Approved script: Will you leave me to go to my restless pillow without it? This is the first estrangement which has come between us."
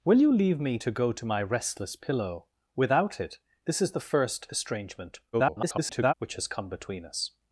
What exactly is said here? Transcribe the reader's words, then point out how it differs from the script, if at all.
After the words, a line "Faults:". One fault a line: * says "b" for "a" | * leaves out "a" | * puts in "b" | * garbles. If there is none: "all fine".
Will you leave me to go to my restless pillow without it? This is the first estrangement [garbled] which has come between us."
Faults:
* garbles